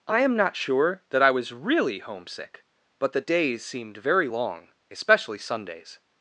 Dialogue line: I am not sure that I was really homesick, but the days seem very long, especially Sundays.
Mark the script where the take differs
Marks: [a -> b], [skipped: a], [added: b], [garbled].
I am not sure that I was really homesick, but the days [seem -> seemed] very long, especially Sundays.